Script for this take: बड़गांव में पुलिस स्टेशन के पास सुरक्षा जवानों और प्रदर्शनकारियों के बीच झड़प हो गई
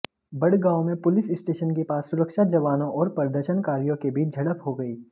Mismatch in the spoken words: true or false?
false